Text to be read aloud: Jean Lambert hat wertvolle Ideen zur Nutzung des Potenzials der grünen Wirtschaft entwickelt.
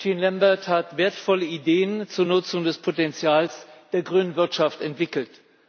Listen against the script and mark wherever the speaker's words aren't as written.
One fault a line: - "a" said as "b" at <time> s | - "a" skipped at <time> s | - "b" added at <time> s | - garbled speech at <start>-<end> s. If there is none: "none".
none